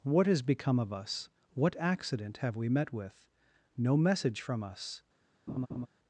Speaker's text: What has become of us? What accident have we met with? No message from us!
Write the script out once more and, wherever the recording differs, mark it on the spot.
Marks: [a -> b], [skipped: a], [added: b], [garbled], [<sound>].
What has become of us? What accident have we met with? No message from us! [laugh]